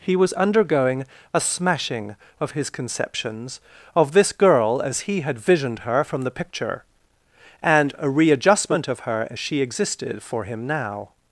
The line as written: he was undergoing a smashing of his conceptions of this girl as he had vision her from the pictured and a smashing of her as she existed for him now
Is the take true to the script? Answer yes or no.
no